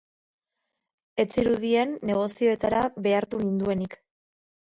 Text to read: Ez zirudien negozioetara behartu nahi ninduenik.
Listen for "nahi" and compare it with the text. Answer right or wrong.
wrong